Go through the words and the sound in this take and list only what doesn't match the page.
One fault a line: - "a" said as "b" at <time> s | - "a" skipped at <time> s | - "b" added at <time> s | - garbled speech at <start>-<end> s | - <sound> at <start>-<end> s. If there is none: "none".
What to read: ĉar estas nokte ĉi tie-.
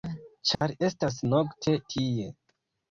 - dropout at 0.6-0.6 s
- "ĉi" skipped at 1.8 s